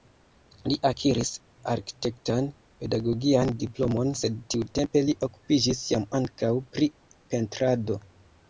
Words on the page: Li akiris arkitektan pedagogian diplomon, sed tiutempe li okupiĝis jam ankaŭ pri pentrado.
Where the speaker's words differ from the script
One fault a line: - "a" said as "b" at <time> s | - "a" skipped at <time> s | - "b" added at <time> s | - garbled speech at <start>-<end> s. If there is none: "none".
none